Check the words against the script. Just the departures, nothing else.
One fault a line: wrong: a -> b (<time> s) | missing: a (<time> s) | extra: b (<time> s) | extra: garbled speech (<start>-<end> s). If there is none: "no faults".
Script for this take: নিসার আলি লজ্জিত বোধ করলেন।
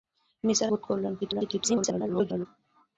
missing: আলি লজ্জিত (0.7 s)
extra: garbled speech (1.2-2.5 s)